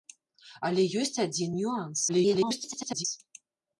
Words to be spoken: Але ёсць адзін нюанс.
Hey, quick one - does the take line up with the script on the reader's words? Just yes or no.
no